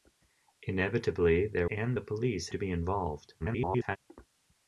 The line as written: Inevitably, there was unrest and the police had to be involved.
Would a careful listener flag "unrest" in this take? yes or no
yes